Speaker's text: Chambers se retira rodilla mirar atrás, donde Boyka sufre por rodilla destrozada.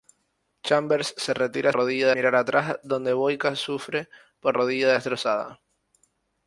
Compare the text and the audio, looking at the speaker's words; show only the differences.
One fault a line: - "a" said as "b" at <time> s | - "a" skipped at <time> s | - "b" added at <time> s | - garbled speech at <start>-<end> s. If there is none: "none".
none